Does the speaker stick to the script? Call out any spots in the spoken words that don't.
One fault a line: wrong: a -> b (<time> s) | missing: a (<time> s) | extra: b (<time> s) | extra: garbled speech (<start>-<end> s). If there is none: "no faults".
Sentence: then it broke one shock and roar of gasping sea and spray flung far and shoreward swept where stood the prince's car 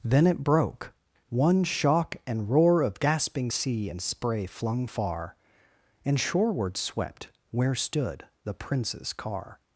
no faults